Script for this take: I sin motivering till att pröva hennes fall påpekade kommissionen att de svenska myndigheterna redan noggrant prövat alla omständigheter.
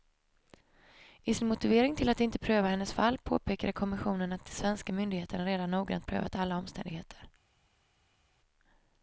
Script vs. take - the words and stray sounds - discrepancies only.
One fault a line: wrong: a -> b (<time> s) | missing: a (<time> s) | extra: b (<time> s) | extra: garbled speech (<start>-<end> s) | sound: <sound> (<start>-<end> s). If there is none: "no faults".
extra: inte (2.2 s)